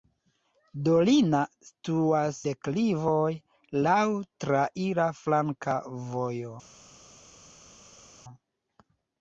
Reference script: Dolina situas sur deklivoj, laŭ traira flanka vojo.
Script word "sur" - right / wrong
wrong